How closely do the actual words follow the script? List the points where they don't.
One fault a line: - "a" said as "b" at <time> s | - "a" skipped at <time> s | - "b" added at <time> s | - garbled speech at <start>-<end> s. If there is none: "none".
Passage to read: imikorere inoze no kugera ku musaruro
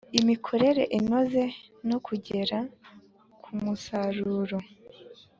none